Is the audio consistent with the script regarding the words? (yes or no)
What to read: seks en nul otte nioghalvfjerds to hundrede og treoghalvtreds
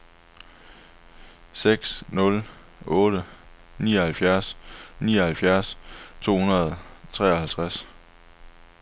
no